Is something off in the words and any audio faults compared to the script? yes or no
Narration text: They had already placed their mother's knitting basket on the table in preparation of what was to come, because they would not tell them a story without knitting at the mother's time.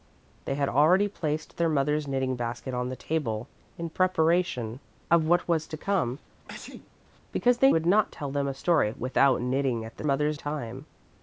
yes